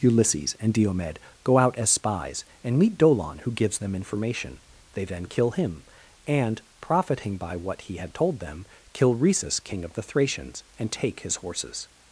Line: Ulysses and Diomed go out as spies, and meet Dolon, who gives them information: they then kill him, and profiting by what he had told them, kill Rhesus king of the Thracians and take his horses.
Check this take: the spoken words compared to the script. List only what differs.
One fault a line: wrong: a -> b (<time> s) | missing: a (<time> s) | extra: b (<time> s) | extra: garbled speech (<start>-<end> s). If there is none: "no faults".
no faults